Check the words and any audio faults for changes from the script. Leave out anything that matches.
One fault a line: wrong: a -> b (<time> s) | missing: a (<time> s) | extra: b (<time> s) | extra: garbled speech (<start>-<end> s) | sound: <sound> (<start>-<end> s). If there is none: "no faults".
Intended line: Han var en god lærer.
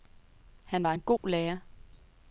sound: dropout (1.2-1.2 s)